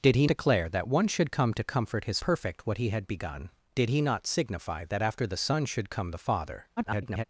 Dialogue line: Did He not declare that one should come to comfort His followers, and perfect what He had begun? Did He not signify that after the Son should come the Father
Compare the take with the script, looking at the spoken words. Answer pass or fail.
fail